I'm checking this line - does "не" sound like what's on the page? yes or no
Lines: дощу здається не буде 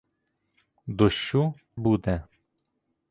no